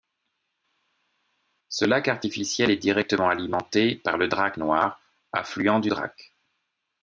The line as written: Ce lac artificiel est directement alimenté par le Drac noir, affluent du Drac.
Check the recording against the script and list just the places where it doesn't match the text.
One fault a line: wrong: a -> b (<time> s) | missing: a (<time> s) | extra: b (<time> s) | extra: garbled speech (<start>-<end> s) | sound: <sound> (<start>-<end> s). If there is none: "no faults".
no faults